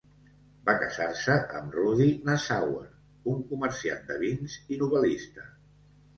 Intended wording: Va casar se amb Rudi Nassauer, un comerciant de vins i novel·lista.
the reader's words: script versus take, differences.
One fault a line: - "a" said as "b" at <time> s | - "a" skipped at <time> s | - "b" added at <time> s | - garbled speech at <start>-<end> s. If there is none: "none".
none